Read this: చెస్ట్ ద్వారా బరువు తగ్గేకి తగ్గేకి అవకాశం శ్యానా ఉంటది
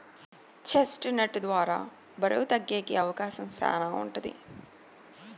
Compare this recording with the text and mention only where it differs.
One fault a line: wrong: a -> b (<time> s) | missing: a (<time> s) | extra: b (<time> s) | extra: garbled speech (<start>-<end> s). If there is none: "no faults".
extra: నట్ (1.2 s)
missing: తగ్గేకి (2.9 s)